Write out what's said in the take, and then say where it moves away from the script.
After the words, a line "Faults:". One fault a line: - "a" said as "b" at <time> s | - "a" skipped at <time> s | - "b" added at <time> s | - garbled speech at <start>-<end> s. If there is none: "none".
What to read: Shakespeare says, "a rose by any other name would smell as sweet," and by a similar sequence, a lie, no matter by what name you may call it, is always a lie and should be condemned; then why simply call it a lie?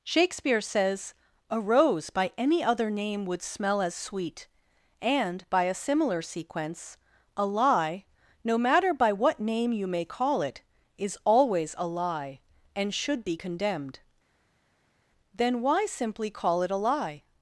Shakespeare says, "a rose by any other name would smell as sweet," and by a similar sequence, a lie, no matter by what name you may call it, is always a lie and should be condemned; then why simply call it a lie?
Faults:
none